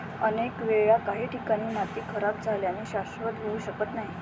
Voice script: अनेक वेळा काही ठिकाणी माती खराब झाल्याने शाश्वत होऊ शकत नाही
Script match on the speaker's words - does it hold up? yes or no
yes